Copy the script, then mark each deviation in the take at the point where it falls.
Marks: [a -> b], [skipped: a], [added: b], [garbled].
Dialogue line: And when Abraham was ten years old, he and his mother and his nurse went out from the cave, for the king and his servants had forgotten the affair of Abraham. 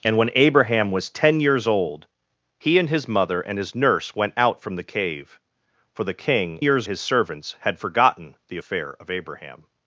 And when Abraham was ten years old, he and his mother and his nurse went out from the cave, for the king [and -> years] his servants had forgotten the affair of Abraham.